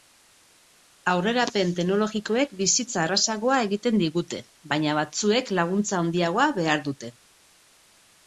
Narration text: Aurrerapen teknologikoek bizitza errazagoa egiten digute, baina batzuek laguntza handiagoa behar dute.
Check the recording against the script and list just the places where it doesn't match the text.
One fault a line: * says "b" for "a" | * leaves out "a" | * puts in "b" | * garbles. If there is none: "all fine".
all fine